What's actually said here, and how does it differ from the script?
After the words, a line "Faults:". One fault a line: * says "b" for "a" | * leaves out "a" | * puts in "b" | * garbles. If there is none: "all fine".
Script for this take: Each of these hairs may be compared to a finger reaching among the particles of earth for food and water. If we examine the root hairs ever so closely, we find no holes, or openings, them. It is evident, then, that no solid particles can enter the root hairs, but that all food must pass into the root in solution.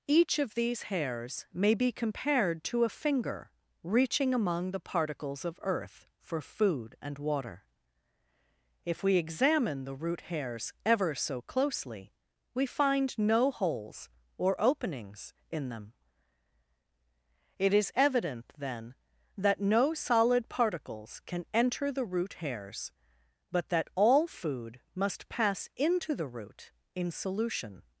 Each of these hairs may be compared to a finger reaching among the particles of earth for food and water. If we examine the root hairs ever so closely, we find no holes, or openings, in them. It is evident, then, that no solid particles can enter the root hairs, but that all food must pass into the root in solution.
Faults:
* puts in "in"